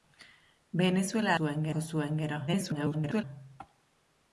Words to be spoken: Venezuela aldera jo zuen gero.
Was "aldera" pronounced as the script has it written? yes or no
no